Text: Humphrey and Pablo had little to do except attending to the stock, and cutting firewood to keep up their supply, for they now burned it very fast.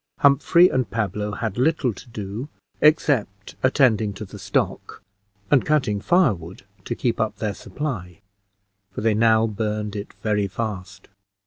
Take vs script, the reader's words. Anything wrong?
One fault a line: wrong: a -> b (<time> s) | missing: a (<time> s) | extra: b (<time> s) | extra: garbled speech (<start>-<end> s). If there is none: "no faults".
no faults